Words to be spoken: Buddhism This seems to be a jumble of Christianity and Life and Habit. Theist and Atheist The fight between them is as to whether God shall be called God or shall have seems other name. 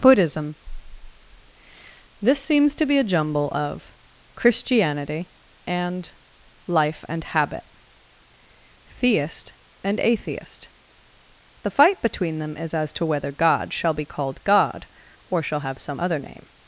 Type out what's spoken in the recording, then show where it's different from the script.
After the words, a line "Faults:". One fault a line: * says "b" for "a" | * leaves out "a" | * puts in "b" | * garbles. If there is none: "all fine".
Buddhism This seems to be a jumble of Christianity and Life and Habit. Theist and Atheist The fight between them is as to whether God shall be called God or shall have some other name.
Faults:
* says "some" for "seems"